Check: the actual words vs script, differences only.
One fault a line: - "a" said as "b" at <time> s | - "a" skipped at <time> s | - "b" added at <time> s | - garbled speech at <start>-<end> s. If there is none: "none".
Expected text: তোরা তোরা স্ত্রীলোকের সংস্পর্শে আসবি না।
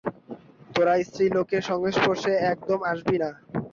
- "তোরা" skipped at 0.9 s
- "একদম" added at 2.5 s